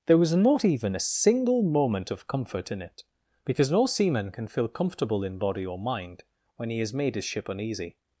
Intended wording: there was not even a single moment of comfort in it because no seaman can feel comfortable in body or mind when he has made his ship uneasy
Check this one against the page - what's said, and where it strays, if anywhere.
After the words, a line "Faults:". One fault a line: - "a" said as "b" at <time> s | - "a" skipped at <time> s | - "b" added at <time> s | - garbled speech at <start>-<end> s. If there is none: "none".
there was not even a single moment of comfort in it because no seaman can feel comfortable in body or mind when he has made his ship uneasy
Faults:
none